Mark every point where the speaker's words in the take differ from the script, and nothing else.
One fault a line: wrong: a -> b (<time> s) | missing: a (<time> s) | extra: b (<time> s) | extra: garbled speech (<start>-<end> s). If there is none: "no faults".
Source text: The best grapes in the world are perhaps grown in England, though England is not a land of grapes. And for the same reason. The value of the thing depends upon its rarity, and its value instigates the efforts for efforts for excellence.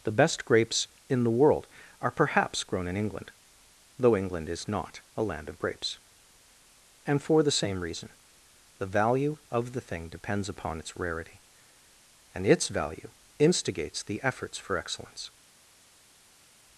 missing: efforts for (14.8 s)